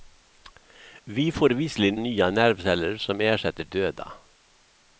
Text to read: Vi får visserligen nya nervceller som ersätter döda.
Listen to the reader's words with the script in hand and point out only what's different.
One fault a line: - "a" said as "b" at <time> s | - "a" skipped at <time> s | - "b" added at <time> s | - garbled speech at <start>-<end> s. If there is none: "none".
none